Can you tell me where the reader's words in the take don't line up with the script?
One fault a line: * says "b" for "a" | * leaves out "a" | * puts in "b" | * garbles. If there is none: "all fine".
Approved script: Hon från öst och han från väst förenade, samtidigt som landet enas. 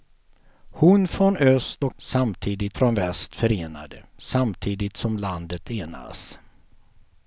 * says "samtidigt" for "han"